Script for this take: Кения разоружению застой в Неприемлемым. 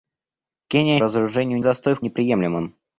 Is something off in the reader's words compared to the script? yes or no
no